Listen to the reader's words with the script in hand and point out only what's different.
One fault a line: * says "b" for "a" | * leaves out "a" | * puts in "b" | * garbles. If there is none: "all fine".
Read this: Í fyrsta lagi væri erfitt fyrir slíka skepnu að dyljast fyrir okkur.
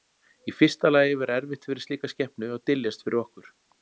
all fine